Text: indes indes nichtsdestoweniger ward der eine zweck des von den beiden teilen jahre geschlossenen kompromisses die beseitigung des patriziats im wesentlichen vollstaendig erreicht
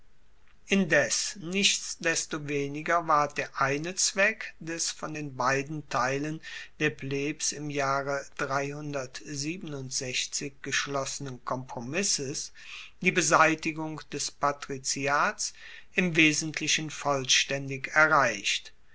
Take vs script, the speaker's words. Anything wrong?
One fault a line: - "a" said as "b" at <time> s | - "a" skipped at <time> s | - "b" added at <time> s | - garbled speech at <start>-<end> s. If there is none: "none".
- "indes" skipped at 1.4 s
- "der plebs im" added at 6.8 s